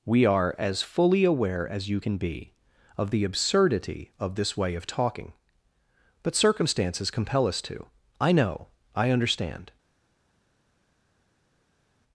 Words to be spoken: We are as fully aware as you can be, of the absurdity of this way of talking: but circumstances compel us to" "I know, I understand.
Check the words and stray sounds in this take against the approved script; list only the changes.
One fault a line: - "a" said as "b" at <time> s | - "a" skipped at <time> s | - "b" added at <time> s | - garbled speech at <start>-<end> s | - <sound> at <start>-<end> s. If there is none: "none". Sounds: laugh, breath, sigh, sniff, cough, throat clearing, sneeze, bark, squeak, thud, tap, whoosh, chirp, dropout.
none